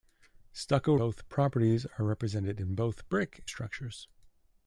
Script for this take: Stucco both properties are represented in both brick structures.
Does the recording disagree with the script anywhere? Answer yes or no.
no